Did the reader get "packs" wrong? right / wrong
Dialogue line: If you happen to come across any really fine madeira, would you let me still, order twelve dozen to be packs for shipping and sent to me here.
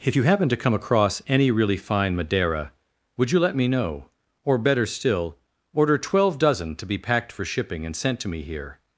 wrong